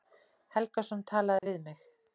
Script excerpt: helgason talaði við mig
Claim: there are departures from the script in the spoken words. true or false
false